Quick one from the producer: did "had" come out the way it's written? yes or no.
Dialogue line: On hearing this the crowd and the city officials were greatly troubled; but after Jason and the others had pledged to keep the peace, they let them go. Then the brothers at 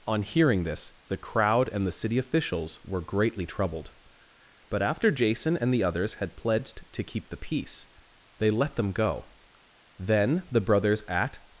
yes